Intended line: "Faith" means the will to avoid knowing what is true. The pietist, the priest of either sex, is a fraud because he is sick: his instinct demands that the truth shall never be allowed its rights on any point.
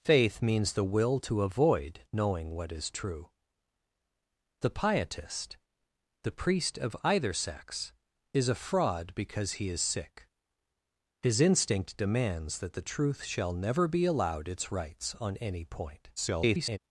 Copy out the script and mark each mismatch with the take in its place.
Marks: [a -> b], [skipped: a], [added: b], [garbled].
"Faith" means the will to avoid knowing what is true. The pietist, the priest of either sex, is a fraud because he is sick: his instinct demands that the truth shall never be allowed its rights on any point. [garbled]